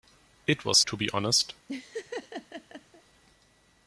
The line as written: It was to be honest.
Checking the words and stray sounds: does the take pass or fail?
fail